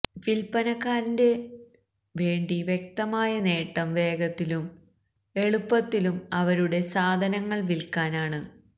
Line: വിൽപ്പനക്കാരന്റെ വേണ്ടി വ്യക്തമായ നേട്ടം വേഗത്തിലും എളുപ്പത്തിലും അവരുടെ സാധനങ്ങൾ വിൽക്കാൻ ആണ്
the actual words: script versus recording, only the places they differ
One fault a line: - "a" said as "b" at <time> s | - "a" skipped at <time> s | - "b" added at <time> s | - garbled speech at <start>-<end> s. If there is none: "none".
none